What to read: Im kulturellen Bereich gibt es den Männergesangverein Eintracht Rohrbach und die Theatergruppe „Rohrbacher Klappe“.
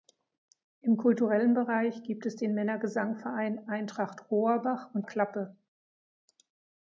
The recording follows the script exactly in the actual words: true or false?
false